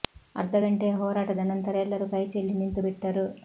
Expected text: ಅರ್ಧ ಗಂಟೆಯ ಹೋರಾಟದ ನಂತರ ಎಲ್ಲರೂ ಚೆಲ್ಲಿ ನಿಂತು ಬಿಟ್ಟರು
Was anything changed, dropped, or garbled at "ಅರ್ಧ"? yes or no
no